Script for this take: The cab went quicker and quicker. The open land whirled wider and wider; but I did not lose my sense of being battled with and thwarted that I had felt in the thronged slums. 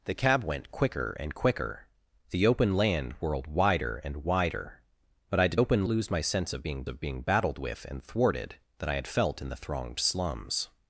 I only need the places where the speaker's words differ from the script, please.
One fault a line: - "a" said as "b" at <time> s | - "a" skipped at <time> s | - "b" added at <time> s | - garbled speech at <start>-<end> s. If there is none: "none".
- "not" said as "open" at 5.6 s
- "of being" added at 6.9 s